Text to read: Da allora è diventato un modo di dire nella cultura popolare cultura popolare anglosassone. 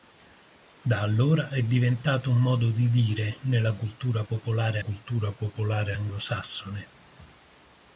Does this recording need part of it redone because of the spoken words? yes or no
no